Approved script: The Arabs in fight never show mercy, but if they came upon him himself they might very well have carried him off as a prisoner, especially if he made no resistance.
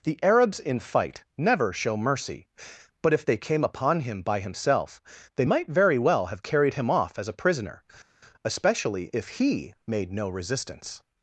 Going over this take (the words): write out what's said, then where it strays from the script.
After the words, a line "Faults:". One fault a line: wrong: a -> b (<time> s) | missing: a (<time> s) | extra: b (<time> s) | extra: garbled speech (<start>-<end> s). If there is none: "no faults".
The Arabs in fight never show mercy, but if they came upon him by himself they might very well have carried him off as a prisoner, especially if he made no resistance.
Faults:
extra: by (4.2 s)